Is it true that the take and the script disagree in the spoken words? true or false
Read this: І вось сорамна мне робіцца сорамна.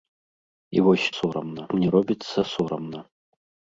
false